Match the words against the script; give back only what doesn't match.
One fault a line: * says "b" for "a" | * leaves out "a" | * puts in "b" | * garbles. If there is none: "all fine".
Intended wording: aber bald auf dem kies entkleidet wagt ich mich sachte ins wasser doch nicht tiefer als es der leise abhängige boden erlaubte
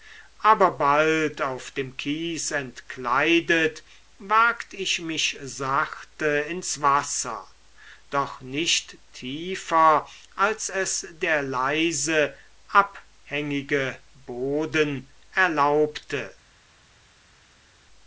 all fine